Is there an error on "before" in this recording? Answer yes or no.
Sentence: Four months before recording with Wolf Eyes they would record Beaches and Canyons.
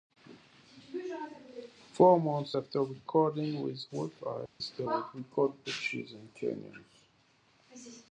yes